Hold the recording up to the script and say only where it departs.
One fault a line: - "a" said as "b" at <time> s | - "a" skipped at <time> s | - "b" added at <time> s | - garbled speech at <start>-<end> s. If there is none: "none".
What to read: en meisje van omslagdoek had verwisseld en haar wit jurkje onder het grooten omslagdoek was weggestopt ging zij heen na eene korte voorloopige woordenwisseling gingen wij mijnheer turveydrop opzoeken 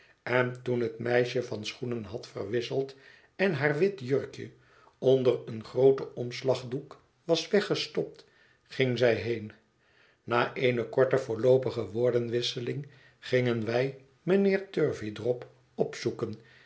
- "toen het" added at 0.6 s
- "omslagdoek" said as "schoenen" at 1.6 s
- "het" said as "een" at 5.5 s